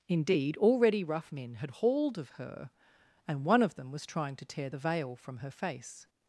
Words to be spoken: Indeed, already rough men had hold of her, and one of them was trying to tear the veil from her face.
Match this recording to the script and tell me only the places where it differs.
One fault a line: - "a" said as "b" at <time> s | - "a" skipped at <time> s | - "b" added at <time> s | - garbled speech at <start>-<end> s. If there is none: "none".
- "hold" said as "hauled" at 1.7 s